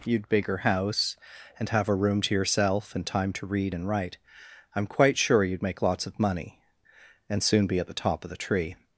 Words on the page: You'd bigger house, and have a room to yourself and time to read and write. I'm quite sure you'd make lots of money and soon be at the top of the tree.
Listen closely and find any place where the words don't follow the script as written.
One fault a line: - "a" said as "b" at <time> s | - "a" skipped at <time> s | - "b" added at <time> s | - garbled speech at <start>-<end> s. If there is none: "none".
none